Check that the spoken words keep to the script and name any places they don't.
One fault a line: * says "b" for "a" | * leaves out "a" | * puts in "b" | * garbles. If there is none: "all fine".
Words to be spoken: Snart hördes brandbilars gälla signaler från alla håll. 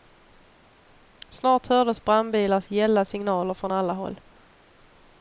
all fine